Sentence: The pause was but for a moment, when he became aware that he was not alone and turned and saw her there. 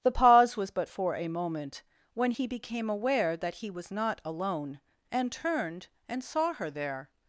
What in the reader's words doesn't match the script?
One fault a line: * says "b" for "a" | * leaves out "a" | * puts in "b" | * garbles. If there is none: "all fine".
all fine